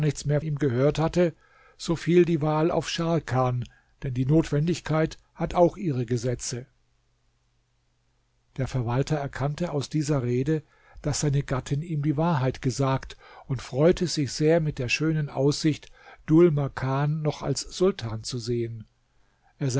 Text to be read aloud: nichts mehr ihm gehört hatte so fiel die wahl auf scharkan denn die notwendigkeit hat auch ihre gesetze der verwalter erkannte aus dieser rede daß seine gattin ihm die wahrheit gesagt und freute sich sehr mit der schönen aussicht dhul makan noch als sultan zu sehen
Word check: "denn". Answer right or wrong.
right